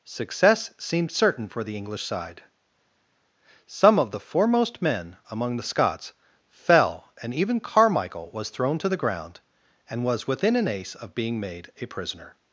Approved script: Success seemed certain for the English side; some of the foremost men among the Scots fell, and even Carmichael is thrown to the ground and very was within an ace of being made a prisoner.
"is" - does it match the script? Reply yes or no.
no